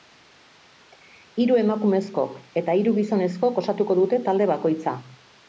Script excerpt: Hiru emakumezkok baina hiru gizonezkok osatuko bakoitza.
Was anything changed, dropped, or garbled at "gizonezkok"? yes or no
no